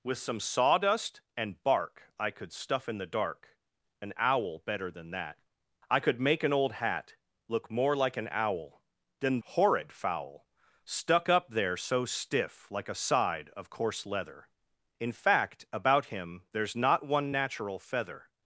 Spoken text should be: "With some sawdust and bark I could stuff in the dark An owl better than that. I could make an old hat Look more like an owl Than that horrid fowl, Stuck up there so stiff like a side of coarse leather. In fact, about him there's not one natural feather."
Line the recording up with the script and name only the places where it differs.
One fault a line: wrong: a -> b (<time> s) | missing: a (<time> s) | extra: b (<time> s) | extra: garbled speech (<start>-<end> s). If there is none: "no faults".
missing: that (9.4 s)